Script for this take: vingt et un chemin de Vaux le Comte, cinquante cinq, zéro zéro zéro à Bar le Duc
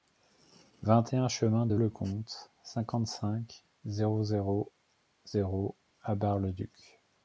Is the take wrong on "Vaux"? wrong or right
wrong